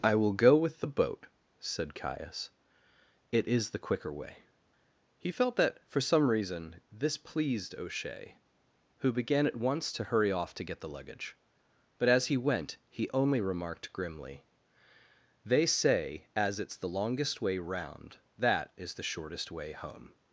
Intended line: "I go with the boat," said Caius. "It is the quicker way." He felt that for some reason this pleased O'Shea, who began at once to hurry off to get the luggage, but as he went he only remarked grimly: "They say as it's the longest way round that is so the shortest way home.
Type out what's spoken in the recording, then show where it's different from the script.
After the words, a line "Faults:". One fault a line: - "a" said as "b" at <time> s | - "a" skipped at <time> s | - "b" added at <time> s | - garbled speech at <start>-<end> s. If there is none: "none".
"I will go with the boat," said Caius. "It is the quicker way." He felt that for some reason this pleased O'Shea, who began at once to hurry off to get the luggage, but as he went he only remarked grimly: "They say as it's the longest way round that is the shortest way home.
Faults:
- "will" added at 0.1 s
- "so" skipped at 18.9 s